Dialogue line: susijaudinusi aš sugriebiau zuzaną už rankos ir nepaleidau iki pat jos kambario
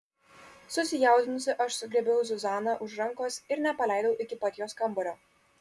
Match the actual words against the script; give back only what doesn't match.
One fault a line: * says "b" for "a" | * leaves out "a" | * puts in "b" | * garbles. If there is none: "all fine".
all fine